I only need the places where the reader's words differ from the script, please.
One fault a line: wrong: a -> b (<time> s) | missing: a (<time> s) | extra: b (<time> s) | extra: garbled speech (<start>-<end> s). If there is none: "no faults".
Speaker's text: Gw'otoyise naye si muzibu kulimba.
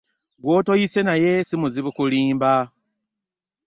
no faults